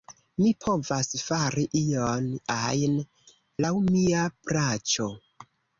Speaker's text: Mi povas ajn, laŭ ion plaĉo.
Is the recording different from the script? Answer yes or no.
yes